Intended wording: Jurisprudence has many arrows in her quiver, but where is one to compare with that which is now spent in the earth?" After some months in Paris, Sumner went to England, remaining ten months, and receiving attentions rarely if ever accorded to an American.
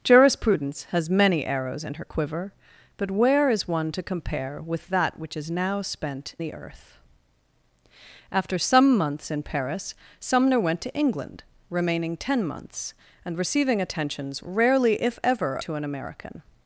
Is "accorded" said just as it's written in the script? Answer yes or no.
no